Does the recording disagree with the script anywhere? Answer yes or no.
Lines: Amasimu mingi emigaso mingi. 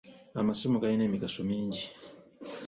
yes